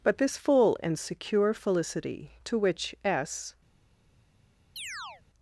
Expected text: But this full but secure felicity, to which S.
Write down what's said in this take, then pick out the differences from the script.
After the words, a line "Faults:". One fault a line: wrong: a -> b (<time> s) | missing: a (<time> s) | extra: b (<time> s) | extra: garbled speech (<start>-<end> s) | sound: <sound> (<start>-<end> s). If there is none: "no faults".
But this full and secure felicity, to which S.
Faults:
wrong: but -> and (0.8 s)
sound: chirp (4.8-5.2 s)